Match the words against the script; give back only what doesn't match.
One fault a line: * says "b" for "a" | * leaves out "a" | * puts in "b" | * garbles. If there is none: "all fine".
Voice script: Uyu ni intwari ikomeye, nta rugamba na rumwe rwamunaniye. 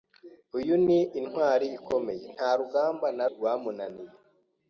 * leaves out "rumwe"